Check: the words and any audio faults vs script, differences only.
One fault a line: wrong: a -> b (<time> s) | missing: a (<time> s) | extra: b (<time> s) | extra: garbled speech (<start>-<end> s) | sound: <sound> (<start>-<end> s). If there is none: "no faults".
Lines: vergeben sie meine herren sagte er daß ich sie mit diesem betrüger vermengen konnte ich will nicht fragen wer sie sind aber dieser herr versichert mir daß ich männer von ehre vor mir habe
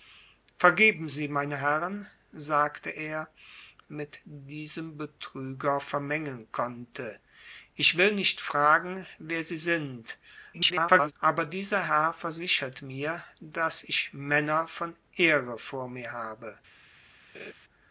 missing: daß ich sie (3.3 s)
extra: garbled speech (10.5-11.1 s)
sound: laugh (17.3-17.5 s)